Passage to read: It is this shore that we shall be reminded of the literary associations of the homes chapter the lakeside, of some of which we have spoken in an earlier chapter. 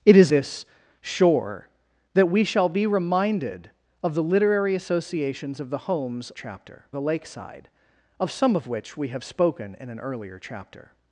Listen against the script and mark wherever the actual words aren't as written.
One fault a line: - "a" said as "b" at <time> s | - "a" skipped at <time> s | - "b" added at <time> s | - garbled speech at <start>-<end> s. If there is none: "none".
none